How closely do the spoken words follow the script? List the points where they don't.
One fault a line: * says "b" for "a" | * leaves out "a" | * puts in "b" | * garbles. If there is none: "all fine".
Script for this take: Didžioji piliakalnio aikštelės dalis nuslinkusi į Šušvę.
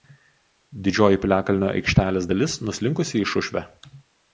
all fine